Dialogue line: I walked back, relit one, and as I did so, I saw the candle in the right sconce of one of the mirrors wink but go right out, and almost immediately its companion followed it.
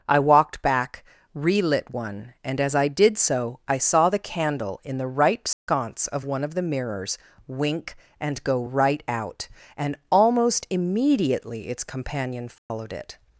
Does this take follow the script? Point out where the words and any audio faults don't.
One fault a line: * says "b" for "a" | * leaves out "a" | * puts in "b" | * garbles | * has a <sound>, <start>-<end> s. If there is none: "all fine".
* has a dropout, 5.5-5.7 s
* says "and" for "but"
* has a dropout, 12.6-12.7 s